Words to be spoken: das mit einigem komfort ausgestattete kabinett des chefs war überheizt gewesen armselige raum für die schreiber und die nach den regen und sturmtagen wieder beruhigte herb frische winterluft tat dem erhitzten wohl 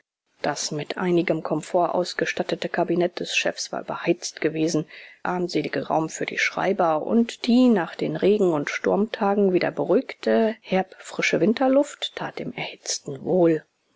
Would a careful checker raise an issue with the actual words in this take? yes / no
no